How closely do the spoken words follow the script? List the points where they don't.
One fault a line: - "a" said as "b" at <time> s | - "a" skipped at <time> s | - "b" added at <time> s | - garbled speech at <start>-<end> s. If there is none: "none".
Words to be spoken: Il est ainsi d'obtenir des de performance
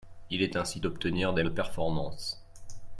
none